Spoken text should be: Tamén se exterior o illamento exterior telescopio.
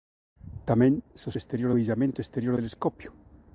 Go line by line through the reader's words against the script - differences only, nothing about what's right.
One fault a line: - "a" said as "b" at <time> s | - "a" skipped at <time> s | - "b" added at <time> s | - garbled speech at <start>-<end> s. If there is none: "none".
none